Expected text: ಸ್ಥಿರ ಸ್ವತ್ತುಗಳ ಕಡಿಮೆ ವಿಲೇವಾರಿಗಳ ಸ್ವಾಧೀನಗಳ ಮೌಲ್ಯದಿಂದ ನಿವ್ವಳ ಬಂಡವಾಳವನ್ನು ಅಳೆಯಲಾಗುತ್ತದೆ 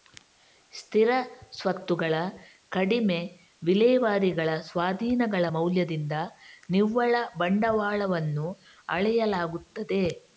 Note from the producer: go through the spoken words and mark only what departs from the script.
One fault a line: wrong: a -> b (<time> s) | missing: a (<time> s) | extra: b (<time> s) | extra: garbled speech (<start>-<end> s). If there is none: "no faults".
no faults